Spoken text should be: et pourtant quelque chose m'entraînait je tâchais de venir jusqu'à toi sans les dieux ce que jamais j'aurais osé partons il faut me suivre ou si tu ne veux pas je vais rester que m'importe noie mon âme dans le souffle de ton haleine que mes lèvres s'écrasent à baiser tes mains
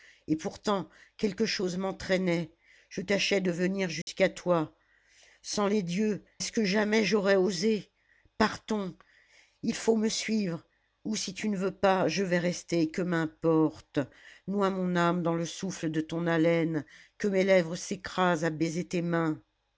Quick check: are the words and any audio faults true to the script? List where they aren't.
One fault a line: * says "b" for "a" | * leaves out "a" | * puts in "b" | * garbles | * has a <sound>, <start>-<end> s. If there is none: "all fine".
* has a dropout, 4.0-4.1 s